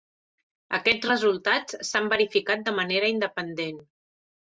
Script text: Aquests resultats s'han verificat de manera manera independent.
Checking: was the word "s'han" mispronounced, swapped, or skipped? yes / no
no